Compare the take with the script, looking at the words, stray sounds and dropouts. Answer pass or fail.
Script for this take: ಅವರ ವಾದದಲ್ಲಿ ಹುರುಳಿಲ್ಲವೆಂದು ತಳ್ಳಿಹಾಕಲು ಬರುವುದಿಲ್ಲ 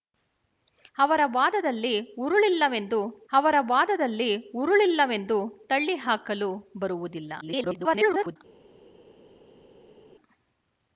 fail